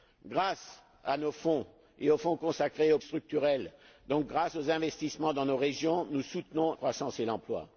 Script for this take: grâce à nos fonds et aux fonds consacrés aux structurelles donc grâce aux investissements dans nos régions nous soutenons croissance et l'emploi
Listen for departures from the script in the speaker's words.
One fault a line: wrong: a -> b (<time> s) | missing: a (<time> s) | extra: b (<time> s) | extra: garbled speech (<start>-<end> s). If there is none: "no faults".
no faults